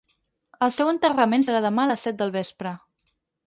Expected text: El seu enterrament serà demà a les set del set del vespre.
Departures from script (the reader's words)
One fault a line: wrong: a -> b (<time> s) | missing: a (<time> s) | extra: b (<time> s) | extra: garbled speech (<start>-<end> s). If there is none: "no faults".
missing: set del (2.4 s)